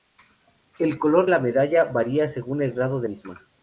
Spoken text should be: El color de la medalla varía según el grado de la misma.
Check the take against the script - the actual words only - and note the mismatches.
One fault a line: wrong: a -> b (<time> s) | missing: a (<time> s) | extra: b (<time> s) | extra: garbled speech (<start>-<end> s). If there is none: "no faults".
missing: de (1.3 s)
missing: la (3.1 s)